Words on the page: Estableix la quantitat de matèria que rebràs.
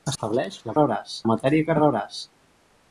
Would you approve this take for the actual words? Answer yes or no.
no